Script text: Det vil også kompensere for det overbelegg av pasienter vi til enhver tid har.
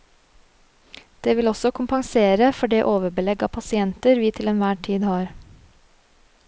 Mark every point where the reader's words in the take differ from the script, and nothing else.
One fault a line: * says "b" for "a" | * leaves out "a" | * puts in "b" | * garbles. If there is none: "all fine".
all fine